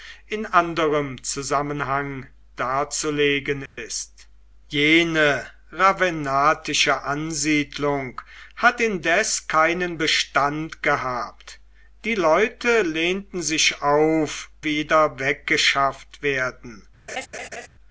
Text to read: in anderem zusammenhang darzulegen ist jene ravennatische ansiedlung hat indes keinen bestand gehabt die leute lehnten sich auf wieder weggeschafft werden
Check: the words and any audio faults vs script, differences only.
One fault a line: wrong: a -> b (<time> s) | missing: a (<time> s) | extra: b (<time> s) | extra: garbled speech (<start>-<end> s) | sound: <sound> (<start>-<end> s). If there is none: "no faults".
sound: dropout (3.7-3.8 s)
sound: laugh (17.1-17.7 s)